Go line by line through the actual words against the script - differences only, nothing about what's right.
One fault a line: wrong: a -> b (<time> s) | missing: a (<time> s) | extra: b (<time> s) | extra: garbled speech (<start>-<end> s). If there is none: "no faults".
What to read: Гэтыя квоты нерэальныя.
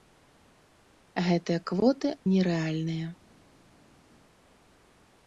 no faults